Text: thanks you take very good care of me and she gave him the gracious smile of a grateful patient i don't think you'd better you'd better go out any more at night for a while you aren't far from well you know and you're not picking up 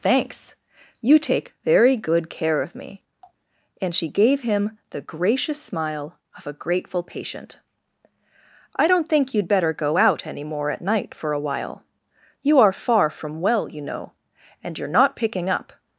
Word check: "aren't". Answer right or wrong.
wrong